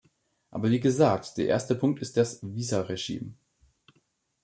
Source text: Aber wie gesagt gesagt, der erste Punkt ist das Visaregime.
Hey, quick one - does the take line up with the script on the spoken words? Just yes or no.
no